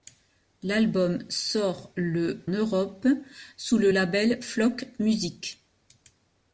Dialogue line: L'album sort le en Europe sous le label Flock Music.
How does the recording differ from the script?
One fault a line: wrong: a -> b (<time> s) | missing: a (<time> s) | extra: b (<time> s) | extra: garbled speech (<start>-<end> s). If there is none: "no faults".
missing: en (2.4 s)